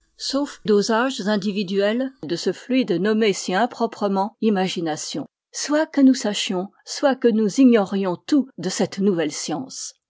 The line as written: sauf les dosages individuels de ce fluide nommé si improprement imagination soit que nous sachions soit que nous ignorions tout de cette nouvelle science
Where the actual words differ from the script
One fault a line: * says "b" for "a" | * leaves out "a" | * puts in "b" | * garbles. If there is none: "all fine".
* leaves out "les"